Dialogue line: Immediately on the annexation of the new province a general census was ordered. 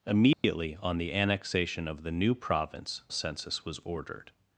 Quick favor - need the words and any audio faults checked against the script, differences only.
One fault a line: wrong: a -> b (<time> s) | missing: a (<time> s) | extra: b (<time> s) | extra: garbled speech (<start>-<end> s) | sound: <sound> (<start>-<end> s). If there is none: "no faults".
sound: dropout (0.3-0.4 s)
missing: a general (3.0 s)